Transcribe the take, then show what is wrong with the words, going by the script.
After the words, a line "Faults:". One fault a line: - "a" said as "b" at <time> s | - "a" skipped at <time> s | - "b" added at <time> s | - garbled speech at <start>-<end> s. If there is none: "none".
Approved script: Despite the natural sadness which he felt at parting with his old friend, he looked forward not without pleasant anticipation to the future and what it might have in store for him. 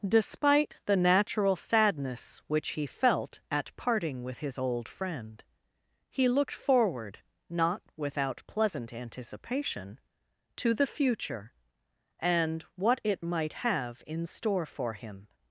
Despite the natural sadness which he felt at parting with his old friend, he looked forward not without pleasant anticipation to the future and what it might have in store for him.
Faults:
none